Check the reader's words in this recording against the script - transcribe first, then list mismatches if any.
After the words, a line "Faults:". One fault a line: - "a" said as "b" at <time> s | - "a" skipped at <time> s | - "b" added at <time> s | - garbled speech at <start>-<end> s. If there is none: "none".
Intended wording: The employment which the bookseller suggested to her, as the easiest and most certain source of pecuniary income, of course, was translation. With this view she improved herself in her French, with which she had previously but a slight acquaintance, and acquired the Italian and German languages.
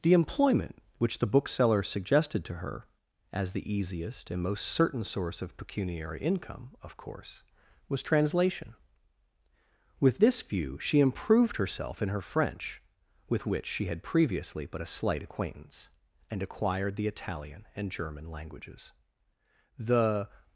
The employment which the bookseller suggested to her, as the easiest and most certain source of pecuniary income, of course, was translation. With this view she improved herself in her French, with which she had previously but a slight acquaintance, and acquired the Italian and German languages. The
Faults:
- "The" added at 19.8 s